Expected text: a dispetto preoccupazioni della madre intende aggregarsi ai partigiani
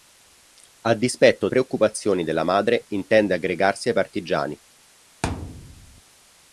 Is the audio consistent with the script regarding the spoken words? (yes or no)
yes